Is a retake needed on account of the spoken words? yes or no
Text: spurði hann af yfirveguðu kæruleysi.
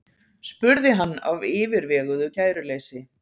no